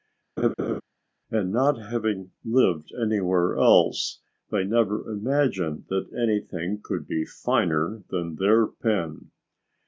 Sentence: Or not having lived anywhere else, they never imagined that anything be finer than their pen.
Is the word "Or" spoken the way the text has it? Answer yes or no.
no